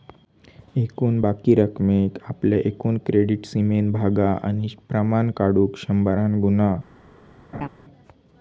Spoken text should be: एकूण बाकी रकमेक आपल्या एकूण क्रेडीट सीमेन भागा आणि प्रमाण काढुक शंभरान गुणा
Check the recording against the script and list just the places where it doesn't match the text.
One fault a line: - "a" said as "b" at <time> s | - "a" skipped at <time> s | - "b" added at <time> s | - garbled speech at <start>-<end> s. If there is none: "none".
none